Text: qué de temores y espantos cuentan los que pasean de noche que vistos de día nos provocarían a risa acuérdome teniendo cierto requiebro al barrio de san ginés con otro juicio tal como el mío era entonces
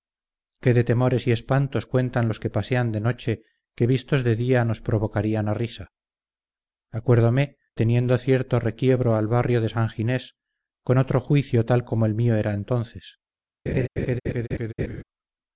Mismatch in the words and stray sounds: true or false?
true